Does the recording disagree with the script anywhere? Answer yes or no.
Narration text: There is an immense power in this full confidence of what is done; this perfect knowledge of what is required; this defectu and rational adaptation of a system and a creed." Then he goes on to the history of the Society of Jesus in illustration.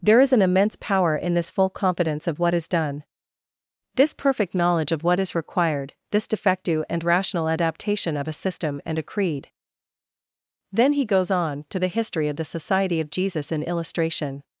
no